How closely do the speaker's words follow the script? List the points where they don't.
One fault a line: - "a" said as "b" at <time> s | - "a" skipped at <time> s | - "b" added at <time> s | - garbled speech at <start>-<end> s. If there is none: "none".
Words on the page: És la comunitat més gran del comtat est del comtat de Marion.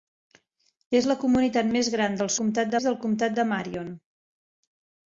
none